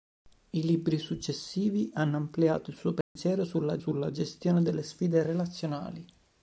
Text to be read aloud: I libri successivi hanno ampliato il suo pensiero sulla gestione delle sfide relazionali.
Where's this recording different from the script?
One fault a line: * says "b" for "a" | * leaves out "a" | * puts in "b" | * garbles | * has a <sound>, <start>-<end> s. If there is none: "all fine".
* has a dropout, 3.0-3.2 s
* puts in "sulla"